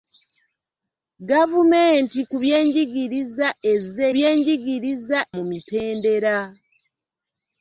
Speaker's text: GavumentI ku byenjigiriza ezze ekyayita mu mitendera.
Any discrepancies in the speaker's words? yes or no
yes